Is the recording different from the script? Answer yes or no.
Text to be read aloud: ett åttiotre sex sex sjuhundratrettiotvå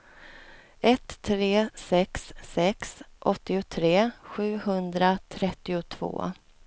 yes